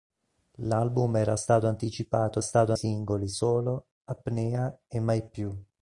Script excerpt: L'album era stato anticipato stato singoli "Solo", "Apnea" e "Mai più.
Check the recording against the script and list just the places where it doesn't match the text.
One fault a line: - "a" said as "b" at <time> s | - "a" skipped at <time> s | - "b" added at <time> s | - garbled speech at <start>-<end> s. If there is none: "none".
none